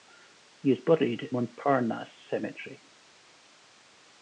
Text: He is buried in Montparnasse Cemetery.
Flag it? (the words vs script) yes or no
yes